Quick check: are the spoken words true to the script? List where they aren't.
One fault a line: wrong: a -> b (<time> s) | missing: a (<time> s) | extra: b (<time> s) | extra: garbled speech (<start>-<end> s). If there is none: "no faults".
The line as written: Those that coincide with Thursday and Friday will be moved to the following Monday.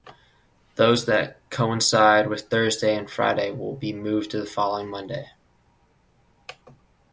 no faults